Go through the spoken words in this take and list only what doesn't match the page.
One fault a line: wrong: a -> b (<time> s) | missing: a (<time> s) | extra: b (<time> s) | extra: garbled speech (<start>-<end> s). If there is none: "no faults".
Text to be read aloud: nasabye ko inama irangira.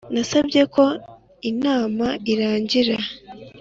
no faults